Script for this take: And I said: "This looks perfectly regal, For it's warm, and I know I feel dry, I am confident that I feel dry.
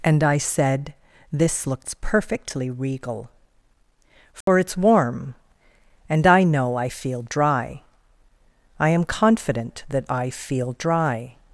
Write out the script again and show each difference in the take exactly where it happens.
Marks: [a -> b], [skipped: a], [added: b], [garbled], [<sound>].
And I said: "This looks perfectly regal, For [dropout] it's warm, and I know I feel dry, I am confident that I feel dry.